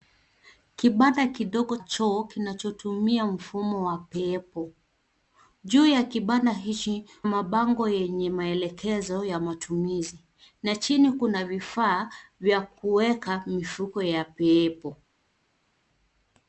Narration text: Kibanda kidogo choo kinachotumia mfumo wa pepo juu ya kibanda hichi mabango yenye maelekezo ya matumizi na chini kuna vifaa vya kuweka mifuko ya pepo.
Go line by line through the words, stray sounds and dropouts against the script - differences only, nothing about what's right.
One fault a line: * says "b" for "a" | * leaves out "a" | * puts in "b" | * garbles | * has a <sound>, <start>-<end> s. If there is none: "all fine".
all fine